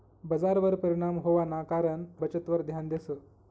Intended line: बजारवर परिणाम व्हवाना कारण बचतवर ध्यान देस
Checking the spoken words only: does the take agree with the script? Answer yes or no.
yes